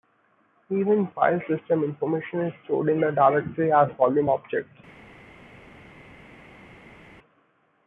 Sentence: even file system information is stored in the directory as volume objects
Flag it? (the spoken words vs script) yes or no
no